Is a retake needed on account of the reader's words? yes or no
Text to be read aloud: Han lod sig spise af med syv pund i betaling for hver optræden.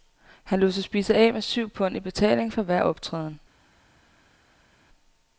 no